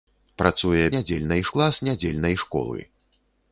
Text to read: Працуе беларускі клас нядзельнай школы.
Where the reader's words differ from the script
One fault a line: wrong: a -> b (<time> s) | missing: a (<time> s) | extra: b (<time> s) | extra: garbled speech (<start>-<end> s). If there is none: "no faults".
wrong: беларускі -> нядзельнай (1.0 s)